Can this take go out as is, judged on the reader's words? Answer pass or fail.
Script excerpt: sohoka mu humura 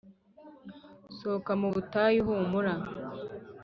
fail